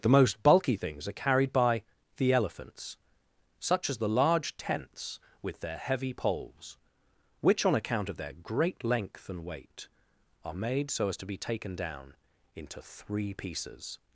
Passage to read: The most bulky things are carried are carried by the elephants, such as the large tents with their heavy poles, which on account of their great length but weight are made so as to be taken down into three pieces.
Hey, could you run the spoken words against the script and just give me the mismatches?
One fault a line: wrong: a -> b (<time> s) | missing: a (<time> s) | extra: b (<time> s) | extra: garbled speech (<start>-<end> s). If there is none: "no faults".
missing: are carried (1.5 s)
wrong: but -> and (9.3 s)